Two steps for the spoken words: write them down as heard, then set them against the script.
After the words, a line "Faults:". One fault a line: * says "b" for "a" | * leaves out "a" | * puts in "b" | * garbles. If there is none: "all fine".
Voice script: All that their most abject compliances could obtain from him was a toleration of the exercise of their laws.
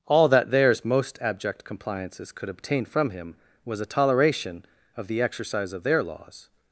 All that theirs most abject compliances could obtain from him was a toleration of the exercise of their laws.
Faults:
* says "theirs" for "their"